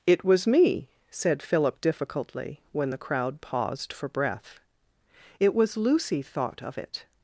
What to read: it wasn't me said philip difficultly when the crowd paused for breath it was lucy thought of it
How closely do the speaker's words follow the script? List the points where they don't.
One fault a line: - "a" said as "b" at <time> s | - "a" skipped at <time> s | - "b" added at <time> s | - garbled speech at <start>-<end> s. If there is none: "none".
- "wasn't" said as "was" at 0.2 s